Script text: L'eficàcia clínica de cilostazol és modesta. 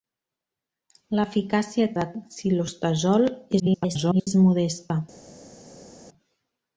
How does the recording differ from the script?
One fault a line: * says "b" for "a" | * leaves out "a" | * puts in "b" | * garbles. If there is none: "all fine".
* leaves out "clínica"
* garbles